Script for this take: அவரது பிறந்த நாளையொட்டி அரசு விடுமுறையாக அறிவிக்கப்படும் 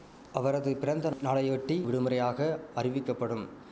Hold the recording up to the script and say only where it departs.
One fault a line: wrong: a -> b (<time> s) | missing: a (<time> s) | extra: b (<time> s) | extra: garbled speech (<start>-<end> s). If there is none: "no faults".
missing: அரசு (1.8 s)